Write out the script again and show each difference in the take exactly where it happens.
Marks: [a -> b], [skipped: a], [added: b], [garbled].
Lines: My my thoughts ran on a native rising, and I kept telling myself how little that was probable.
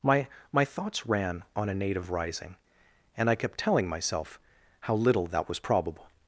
My my thoughts ran on a native rising, and I kept telling myself how little that was probable.